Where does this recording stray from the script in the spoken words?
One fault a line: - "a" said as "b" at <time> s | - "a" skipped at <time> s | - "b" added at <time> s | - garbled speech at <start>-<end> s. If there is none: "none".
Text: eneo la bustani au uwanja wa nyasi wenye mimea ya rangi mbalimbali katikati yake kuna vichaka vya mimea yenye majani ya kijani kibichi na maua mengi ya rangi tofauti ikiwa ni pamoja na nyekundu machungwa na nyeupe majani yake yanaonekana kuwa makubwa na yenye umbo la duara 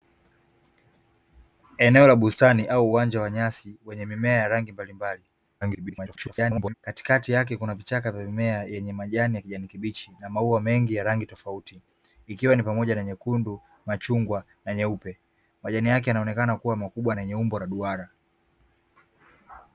- garbled speech at 5.6-6.7 s